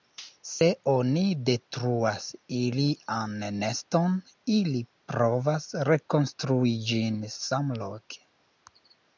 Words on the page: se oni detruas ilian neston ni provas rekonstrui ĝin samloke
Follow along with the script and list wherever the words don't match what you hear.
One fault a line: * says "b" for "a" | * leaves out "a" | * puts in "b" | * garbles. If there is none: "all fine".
* says "ili" for "ni"